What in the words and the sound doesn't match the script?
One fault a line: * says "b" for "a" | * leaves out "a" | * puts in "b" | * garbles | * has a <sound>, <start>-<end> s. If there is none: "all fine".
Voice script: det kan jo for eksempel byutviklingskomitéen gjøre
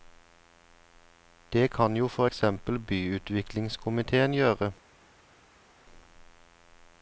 all fine